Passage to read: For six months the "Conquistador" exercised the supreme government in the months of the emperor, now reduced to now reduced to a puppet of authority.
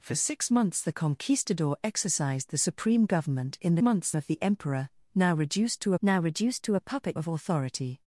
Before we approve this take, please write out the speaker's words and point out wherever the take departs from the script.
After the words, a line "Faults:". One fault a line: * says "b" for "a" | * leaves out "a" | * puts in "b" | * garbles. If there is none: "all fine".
For six months the "Conquistador" exercised the supreme government in the months of the emperor, now reduced to now reduced to a puppet of authority.
Faults:
all fine